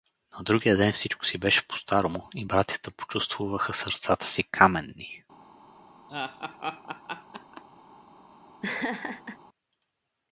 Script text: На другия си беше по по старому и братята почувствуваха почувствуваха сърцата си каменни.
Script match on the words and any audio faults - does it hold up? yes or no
no